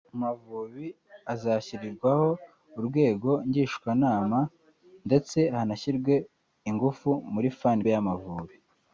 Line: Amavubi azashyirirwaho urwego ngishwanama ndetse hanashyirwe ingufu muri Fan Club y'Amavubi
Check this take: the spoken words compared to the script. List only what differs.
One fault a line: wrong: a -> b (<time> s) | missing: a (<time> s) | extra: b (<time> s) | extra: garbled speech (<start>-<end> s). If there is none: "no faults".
missing: Club (7.8 s)